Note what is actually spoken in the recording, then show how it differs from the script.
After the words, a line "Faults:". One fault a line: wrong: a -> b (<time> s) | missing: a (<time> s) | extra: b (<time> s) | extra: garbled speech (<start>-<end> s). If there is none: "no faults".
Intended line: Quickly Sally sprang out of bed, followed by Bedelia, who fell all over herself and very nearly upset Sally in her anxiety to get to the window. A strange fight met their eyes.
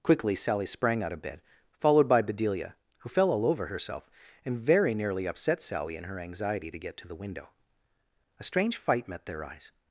Quickly Sally sprang out of bed, followed by Bedelia, who fell all over herself and very nearly upset Sally in her anxiety to get to the window. A strange fight met their eyes.
Faults:
no faults